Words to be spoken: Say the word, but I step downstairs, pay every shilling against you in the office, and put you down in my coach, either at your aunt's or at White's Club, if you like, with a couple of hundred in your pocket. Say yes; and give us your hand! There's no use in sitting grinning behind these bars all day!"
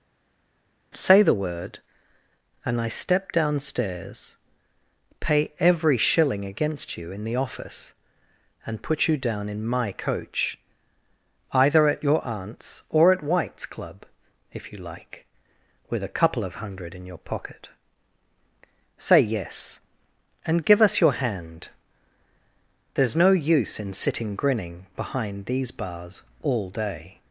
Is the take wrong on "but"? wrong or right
wrong